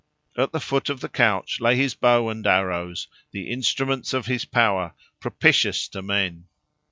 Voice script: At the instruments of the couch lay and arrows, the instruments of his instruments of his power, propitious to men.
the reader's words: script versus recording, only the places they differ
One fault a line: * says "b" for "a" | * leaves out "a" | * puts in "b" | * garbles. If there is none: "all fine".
* says "foot" for "instruments"
* puts in "his bow"
* leaves out "instruments of his"